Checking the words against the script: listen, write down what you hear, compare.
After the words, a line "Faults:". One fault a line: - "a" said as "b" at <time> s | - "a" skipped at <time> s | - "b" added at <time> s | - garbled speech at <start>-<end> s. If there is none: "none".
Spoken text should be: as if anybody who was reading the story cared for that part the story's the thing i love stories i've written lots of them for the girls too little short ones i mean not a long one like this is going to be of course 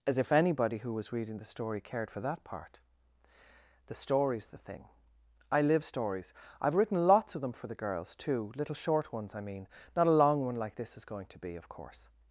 as if anybody who was reading the story cared for that part the story's the thing i live stories i've written lots of them for the girls too little short ones i mean not a long one like this is going to be of course
Faults:
- "love" said as "live" at 5.6 s